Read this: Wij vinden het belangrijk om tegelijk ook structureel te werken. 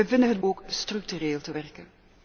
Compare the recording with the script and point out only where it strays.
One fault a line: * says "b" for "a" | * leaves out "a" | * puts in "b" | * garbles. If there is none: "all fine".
* leaves out "belangrijk om tegelijk"